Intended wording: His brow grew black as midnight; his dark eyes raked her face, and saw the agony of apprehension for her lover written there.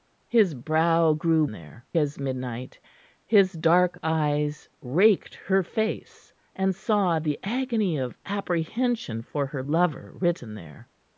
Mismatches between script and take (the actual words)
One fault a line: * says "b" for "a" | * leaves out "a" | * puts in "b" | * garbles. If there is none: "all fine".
* says "there" for "black"